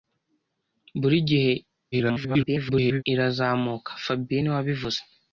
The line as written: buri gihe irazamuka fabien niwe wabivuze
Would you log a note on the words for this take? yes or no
yes